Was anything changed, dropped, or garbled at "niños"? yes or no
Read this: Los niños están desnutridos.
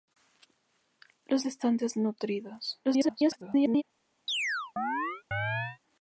yes